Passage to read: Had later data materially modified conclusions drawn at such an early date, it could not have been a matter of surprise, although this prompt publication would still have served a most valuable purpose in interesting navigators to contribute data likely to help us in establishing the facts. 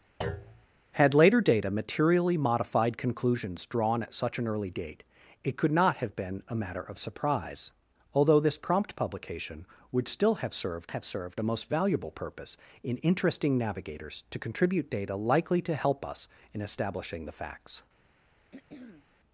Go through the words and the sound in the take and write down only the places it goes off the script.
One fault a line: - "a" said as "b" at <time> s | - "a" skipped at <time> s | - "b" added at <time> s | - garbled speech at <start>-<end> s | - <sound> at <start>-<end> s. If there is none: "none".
- thud at 0.2-0.7 s
- "have served" added at 10.9 s
- throat clearing at 18.5-19.1 s